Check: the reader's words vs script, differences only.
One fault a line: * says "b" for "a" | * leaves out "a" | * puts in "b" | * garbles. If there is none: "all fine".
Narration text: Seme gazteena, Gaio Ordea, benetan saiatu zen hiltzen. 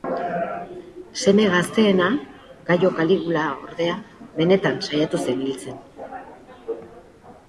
* puts in "Kaligula"